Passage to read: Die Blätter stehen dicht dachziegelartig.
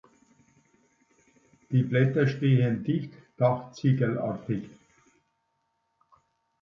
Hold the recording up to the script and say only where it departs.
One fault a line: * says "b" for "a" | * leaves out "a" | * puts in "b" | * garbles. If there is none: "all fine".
all fine